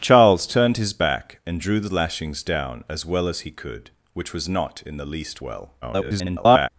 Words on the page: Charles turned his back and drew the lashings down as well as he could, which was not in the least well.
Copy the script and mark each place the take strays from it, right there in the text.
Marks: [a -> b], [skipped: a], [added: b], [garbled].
Charles turned his back and drew the lashings down as well as he could, which was not in the least well. [garbled]